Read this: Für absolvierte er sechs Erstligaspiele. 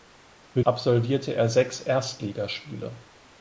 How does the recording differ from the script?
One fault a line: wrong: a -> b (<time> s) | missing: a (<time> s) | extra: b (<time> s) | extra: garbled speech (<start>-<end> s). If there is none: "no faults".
no faults